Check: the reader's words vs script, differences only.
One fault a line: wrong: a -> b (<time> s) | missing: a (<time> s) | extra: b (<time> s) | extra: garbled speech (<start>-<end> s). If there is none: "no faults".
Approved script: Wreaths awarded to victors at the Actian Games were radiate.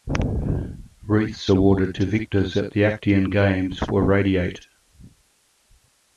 no faults